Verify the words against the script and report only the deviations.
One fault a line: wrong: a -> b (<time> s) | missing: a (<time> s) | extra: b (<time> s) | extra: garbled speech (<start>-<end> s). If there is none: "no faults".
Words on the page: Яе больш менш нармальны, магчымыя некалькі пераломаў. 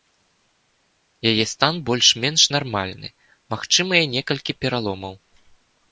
extra: стан (1.5 s)